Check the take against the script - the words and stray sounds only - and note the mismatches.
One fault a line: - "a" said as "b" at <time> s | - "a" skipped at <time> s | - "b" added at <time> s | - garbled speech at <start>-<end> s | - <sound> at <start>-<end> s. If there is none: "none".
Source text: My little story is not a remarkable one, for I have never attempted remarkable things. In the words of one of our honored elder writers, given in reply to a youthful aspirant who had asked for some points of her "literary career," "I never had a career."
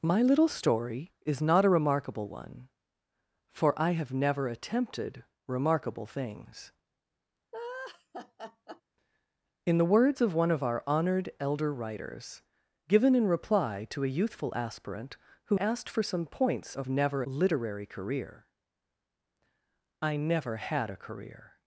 - laugh at 7.5-8.8 s
- "had" skipped at 15.6 s
- "her" said as "never" at 16.9 s